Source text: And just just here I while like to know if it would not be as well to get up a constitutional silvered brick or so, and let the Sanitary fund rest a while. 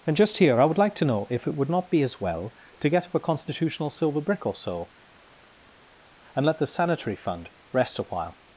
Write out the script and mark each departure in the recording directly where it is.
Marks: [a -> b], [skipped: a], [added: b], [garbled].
And just [skipped: just] here I [while -> would] like to know if it would not be as well to get up a constitutional [silvered -> silver] brick or so, and let the Sanitary fund rest a while.